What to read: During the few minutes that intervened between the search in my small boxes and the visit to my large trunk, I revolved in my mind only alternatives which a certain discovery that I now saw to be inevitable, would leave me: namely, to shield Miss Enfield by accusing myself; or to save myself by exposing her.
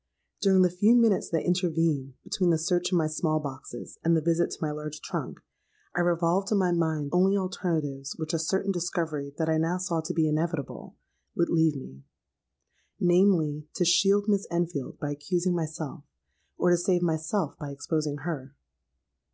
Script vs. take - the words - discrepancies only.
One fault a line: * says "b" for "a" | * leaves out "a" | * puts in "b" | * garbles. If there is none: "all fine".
all fine